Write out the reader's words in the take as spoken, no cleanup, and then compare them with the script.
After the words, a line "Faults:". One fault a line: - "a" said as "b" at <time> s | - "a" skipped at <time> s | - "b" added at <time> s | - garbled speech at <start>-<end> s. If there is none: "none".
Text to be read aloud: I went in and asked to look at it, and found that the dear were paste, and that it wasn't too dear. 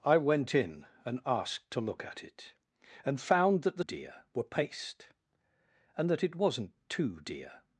I went in and asked to look at it, and found that the dear were paste, and that it wasn't too dear.
Faults:
none